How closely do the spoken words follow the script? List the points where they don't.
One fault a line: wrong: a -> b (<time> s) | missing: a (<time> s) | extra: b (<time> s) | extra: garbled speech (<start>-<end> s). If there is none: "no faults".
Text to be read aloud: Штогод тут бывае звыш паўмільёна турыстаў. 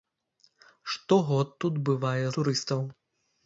missing: звыш паўмільёна (2.2 s)